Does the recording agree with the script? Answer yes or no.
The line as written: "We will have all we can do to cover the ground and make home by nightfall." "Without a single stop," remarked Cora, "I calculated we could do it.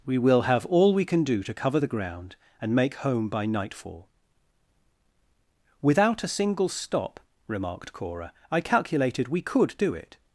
yes